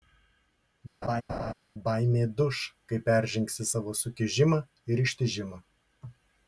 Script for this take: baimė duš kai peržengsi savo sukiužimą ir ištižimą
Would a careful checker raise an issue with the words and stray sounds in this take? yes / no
yes